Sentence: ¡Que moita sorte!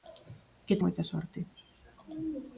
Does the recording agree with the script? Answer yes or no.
yes